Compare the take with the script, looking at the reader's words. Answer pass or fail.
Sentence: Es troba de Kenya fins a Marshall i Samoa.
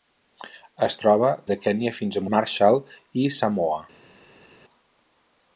pass